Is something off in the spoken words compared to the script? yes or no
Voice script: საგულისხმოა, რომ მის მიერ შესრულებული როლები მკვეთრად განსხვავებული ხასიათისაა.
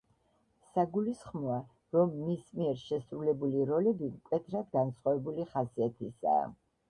no